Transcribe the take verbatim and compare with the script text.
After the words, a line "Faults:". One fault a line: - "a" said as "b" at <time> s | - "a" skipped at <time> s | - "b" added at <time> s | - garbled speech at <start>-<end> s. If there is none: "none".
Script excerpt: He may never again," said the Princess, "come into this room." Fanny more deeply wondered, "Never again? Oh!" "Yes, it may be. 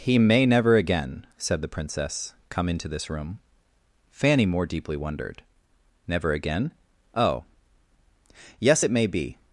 He may never again," said the Princess, "come into this room." Fanny more deeply wondered, "Never again? Oh!" "Yes, it may be.
Faults:
none